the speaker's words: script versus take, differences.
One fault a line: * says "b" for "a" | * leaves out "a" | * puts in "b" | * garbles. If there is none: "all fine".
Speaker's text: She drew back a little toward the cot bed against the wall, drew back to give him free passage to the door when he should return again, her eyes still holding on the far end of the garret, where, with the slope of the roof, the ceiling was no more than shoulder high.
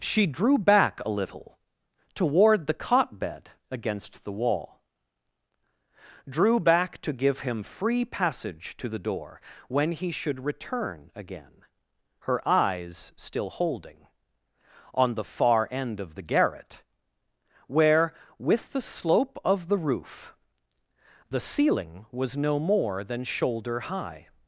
all fine